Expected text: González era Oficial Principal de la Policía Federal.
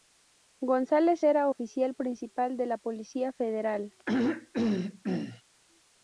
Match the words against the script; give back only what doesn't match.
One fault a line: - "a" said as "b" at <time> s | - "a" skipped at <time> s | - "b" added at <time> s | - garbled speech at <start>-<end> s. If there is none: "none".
none